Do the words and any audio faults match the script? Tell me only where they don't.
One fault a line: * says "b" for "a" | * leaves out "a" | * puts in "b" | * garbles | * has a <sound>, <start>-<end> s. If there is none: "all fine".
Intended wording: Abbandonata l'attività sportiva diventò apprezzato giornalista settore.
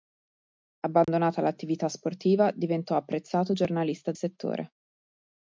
* has a dropout, 1.0-1.1 s